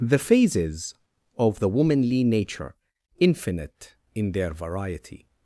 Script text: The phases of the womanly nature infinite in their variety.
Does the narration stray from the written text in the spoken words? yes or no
no